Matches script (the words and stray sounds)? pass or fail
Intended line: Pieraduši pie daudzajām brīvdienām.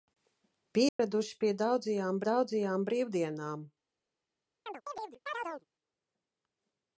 fail